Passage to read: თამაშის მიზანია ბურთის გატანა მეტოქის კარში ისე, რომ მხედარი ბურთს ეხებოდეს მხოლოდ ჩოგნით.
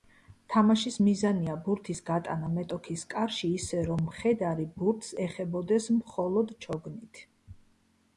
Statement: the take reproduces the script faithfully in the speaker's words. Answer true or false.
true